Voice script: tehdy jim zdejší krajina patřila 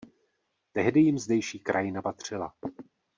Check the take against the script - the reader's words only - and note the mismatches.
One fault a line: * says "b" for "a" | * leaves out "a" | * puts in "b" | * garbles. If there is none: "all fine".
all fine